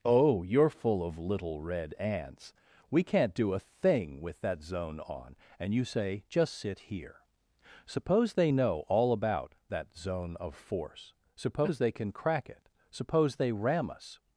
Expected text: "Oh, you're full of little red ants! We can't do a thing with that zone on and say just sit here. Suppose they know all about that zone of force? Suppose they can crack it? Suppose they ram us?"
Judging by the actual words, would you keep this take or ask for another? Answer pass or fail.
fail